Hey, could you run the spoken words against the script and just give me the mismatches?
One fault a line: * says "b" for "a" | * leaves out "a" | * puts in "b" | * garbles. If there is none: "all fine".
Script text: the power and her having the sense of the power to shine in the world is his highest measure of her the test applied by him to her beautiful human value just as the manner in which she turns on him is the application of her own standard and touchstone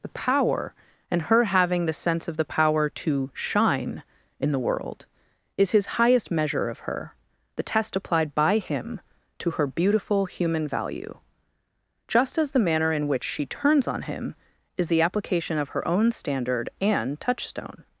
all fine